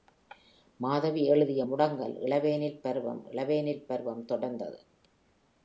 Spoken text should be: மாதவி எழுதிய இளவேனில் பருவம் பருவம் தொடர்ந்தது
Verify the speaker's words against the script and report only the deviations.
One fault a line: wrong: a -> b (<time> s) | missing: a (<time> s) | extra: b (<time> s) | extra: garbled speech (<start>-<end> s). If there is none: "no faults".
extra: முடங்கல் (1.6 s)
extra: இளவேனில் (3.3 s)